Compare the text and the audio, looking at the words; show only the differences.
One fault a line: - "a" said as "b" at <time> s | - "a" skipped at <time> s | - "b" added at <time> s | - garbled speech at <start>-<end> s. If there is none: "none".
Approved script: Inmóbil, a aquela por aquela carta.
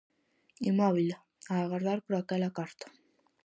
- "aquela" said as "agardar" at 1.6 s